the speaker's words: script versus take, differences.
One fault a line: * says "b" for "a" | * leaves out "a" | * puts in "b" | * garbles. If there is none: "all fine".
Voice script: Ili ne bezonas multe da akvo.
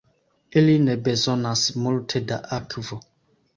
all fine